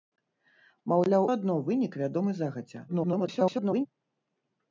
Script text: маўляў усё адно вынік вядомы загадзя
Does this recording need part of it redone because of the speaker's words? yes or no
yes